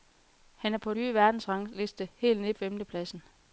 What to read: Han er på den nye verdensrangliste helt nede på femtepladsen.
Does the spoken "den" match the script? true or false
false